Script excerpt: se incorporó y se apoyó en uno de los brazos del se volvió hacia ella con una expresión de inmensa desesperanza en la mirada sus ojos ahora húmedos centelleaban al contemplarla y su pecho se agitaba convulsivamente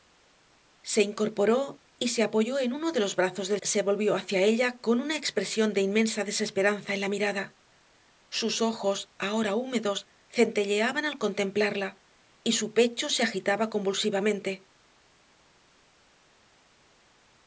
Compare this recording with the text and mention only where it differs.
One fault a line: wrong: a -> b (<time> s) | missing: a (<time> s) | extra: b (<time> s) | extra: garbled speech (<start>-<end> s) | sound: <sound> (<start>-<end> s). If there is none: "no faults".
no faults